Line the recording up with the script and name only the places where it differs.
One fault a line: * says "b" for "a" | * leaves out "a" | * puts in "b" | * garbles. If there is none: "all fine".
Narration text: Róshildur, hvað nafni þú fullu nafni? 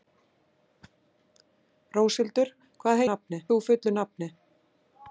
all fine